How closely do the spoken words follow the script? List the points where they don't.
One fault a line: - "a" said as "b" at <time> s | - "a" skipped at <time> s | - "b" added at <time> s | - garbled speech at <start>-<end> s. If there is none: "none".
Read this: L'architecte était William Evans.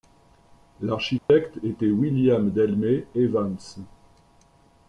- "Delmé" added at 2.5 s